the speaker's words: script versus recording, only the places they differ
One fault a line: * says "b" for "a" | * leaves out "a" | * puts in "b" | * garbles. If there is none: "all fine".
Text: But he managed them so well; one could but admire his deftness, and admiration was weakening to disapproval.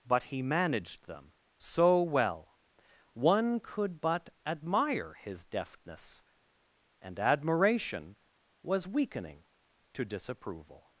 all fine